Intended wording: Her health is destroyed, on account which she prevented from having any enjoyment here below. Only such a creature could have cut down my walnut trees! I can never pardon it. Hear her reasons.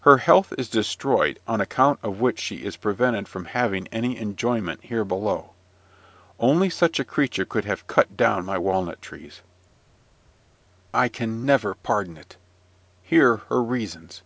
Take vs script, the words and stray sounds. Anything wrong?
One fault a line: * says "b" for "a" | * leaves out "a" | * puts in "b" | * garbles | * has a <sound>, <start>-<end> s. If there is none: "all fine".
* puts in "of"
* puts in "is"